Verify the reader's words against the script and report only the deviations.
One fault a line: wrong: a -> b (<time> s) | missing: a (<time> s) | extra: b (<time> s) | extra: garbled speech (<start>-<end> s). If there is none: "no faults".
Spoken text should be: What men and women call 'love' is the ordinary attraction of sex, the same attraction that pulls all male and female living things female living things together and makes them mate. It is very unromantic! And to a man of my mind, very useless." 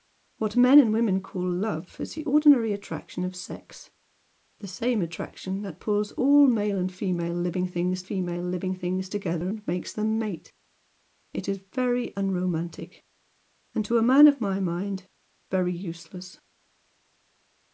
no faults